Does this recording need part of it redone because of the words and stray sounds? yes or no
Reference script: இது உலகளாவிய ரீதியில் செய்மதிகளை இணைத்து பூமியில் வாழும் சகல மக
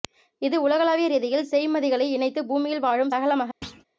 yes